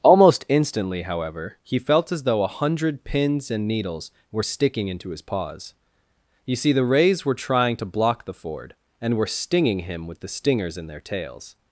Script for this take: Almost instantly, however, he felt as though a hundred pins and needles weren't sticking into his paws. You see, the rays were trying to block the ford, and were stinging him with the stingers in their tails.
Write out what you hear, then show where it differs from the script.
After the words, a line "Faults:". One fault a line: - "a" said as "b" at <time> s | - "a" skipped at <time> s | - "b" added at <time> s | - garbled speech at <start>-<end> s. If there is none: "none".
Almost instantly, however, he felt as though a hundred pins and needles were sticking into his paws. You see, the rays were trying to block the ford, and were stinging him with the stingers in their tails.
Faults:
- "weren't" said as "were" at 4.3 s